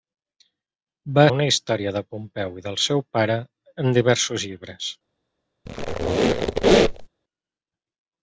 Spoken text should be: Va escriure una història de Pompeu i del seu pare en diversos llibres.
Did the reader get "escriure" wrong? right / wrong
wrong